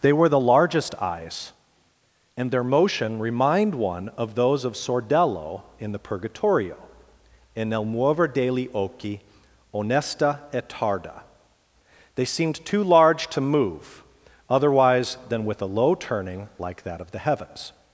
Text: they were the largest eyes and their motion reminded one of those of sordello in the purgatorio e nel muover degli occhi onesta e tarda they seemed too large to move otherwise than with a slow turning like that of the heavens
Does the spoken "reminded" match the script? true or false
false